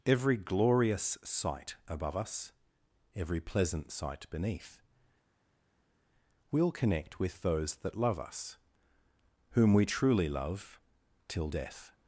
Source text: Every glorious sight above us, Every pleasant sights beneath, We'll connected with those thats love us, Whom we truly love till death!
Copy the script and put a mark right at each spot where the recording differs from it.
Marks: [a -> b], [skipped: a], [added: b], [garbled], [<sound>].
Every glorious sight above us, Every pleasant [sights -> sight] beneath, We'll [connected -> connect] with those [thats -> that] love us, Whom we truly love till death!